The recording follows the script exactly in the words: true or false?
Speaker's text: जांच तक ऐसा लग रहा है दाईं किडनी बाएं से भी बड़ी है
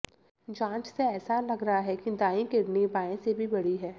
false